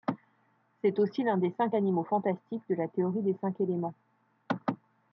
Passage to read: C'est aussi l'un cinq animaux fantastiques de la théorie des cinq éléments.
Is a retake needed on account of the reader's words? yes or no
yes